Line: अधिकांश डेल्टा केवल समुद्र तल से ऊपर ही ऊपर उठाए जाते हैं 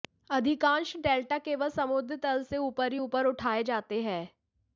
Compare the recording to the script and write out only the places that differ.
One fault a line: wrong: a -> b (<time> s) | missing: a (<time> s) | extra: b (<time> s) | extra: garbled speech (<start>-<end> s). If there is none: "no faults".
no faults